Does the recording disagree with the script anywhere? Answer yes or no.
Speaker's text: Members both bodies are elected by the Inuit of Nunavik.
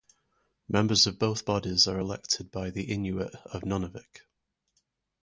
yes